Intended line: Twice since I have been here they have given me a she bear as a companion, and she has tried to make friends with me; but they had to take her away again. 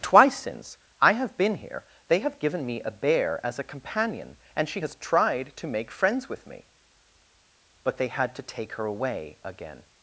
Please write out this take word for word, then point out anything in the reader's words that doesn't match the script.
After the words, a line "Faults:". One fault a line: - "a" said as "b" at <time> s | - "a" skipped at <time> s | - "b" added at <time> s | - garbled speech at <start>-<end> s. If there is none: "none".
Twice since I have been here they have given me a bear as a companion, and she has tried to make friends with me; but they had to take her away again.
Faults:
- "she" skipped at 2.9 s